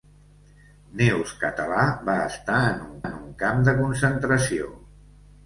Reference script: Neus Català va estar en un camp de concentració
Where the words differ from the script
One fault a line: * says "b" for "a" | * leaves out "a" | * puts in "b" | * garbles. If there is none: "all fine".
* puts in "en un"